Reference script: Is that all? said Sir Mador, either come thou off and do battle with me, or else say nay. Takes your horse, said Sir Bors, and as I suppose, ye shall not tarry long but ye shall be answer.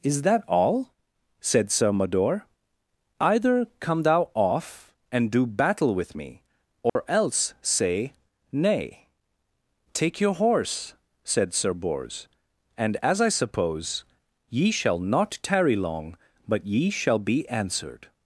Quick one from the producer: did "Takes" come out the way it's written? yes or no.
no